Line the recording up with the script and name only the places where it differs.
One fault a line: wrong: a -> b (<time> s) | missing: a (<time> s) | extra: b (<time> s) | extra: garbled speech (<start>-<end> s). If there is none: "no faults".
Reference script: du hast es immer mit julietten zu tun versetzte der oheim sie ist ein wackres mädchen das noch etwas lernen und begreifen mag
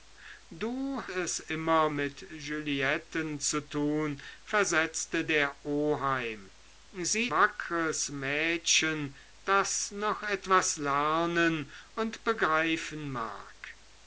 missing: hast (1.0 s)
missing: ist ein (7.3 s)